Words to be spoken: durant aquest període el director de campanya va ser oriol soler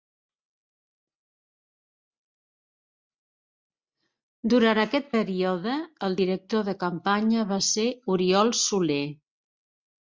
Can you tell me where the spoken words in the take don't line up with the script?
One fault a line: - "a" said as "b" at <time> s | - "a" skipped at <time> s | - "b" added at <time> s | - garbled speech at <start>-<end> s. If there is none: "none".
none